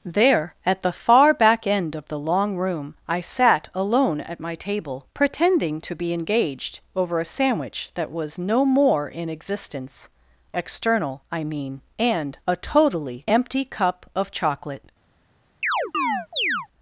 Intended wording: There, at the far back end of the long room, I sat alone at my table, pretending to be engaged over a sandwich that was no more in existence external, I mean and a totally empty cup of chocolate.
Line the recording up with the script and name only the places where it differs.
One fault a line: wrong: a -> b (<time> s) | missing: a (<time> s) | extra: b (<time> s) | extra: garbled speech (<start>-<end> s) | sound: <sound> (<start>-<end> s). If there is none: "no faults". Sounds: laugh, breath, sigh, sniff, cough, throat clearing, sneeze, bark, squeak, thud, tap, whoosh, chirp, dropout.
sound: chirp (15.6-16.7 s)